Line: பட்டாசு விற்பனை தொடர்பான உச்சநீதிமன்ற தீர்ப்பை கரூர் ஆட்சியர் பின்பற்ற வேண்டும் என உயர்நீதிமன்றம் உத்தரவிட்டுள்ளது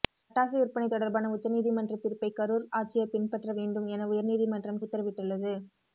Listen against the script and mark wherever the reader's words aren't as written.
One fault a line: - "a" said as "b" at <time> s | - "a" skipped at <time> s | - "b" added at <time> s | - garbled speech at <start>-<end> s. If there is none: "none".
none